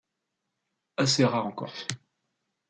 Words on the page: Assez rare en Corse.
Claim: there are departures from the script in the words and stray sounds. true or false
false